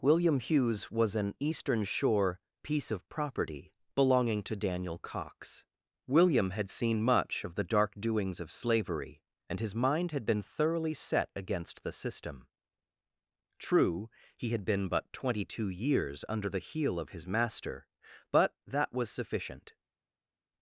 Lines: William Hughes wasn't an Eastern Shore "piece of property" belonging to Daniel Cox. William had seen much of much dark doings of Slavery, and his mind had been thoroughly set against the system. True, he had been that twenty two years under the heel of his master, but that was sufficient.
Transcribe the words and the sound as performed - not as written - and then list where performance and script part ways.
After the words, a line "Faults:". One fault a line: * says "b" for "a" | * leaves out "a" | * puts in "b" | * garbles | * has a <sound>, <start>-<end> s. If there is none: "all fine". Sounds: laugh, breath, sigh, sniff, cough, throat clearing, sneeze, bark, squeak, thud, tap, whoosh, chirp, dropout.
William Hughes was an Eastern Shore "piece of property" belonging to Daniel Cox. William had seen much of the dark doings of Slavery, and his mind had been thoroughly set against the system. True, he had been but twenty two years under the heel of his master, but that was sufficient.
Faults:
* says "was" for "wasn't"
* says "the" for "much"
* says "but" for "that"